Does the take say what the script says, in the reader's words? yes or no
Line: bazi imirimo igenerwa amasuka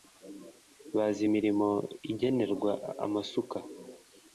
yes